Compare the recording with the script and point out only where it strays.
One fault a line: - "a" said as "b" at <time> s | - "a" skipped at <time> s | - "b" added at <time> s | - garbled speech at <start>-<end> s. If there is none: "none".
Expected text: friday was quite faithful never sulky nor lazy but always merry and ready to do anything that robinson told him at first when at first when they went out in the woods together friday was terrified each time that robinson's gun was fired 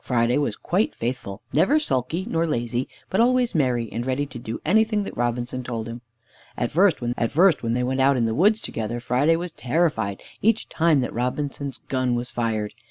none